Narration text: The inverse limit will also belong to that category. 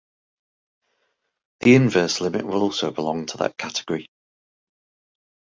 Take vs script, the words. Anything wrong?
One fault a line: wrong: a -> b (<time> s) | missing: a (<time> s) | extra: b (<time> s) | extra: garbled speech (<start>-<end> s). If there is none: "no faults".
no faults